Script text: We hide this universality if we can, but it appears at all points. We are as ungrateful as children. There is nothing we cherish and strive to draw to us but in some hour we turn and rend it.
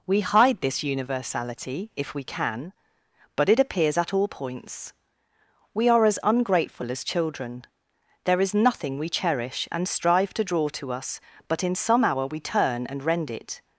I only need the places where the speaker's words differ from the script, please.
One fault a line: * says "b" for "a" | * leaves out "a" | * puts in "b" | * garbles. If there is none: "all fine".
all fine